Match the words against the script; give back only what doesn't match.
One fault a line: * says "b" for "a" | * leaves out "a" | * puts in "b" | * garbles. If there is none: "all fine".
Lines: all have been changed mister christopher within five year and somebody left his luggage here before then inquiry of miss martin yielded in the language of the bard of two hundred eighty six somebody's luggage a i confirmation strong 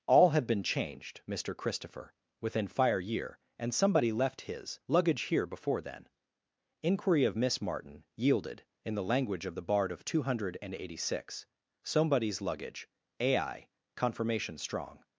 * says "fire" for "five"